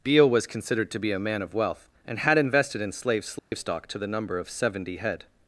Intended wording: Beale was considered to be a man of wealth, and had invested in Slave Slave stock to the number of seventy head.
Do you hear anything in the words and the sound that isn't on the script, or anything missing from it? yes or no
yes